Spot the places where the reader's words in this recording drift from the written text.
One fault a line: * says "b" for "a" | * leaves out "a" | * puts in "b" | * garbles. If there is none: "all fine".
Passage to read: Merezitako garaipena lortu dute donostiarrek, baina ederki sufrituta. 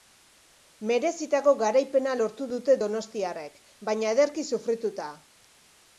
all fine